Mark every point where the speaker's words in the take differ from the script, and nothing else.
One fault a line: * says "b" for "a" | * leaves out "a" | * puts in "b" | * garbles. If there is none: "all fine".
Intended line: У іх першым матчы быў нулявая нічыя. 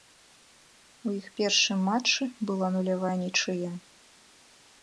* says "была" for "быў"